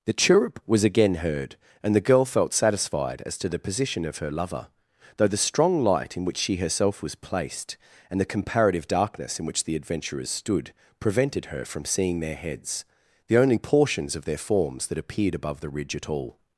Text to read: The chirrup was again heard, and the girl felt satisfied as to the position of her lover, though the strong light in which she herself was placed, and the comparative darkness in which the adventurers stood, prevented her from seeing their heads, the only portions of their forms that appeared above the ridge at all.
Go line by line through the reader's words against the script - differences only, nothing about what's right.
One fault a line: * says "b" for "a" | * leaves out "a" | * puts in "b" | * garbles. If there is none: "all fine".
all fine